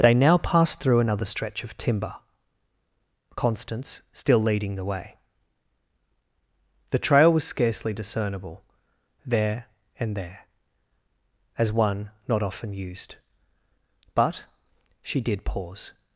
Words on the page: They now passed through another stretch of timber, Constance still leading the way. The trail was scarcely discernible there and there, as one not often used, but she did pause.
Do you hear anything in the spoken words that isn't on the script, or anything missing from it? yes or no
no